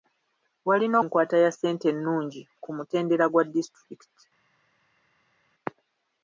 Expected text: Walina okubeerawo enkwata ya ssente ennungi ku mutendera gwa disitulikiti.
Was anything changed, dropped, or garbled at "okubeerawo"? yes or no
yes